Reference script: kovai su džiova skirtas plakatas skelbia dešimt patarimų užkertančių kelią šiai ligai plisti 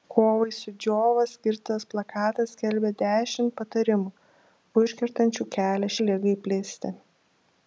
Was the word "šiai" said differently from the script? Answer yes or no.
yes